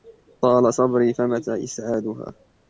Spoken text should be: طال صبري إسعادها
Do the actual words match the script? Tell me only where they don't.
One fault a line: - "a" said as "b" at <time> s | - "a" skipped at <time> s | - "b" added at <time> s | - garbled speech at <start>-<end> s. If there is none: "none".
- "فمتى" added at 1.1 s